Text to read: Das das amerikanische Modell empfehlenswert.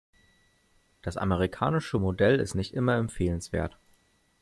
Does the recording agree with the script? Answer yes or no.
no